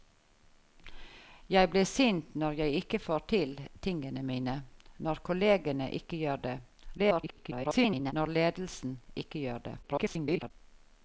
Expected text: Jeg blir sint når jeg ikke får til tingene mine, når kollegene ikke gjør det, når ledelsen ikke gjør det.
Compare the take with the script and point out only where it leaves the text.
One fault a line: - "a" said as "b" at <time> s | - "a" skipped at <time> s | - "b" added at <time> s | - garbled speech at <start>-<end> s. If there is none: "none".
- garbled speech at 7.0-8.1 s
- garbled speech at 9.8-10.5 s